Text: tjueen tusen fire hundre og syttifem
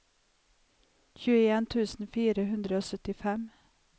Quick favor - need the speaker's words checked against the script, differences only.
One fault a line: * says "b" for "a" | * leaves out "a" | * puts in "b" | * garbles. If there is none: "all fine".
all fine